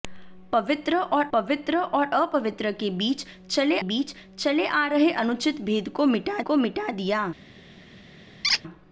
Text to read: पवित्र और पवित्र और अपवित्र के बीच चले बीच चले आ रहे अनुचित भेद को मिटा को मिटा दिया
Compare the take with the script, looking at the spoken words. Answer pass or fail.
pass